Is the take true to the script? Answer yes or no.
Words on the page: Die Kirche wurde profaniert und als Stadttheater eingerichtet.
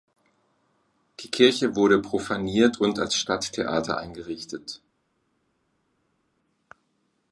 yes